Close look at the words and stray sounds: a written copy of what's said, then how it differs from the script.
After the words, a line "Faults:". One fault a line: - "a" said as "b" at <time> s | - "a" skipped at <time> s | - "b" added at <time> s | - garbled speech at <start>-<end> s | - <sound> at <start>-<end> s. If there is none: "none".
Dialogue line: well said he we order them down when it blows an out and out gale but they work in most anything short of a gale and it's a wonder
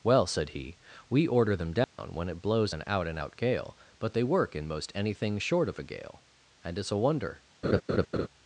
well said he we order them down when it blows an out and out gale but they work in most anything short of a gale and it's a wonder
Faults:
- dropout at 1.8-2.0 s
- laugh at 7.6-8.3 s